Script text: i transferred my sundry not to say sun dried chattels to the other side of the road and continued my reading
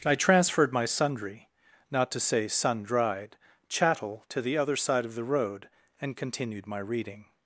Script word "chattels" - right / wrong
wrong